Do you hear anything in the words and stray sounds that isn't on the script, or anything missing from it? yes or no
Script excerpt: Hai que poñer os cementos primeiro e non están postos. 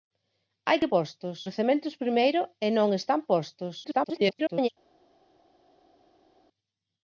yes